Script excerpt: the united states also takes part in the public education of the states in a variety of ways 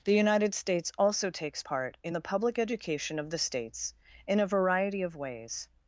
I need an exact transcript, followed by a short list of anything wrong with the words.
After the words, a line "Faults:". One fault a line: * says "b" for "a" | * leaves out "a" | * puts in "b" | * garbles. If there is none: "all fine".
the united states also takes part in the public education of the states in a variety of ways
Faults:
all fine